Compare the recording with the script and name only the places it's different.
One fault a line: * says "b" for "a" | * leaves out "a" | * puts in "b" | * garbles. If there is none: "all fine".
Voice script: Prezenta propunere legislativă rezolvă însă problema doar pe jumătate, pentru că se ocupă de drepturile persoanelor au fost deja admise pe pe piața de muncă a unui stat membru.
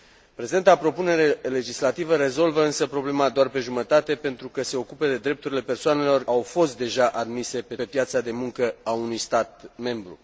all fine